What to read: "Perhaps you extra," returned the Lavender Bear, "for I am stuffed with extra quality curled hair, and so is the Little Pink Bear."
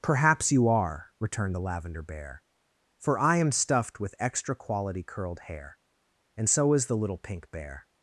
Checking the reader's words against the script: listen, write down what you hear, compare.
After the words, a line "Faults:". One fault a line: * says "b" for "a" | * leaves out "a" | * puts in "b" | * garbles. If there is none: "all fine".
"Perhaps you are," returned the Lavender Bear, "for I am stuffed with extra quality curled hair, and so is the Little Pink Bear."
Faults:
* says "are" for "extra"